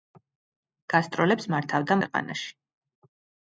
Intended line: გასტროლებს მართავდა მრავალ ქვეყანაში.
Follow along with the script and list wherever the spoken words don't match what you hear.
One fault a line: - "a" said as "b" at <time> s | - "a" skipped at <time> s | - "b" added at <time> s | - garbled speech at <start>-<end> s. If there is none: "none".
- "მრავალ" skipped at 2.0 s